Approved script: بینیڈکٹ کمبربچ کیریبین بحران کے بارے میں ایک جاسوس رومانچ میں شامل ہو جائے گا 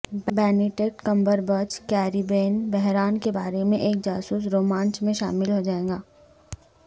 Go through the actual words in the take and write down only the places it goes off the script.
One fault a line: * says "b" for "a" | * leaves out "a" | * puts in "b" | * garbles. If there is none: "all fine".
all fine